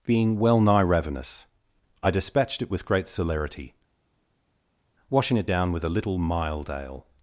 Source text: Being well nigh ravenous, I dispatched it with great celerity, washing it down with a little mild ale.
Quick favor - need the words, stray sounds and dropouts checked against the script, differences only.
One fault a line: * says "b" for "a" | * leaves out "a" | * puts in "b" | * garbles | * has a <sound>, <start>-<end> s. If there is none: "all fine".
all fine